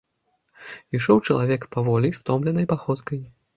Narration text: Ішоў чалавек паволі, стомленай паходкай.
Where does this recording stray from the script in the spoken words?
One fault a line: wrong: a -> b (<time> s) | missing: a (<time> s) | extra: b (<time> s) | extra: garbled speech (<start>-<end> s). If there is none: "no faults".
no faults